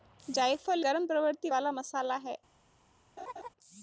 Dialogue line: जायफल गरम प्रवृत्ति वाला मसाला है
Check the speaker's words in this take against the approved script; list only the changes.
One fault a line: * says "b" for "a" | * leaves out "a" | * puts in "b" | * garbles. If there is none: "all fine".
all fine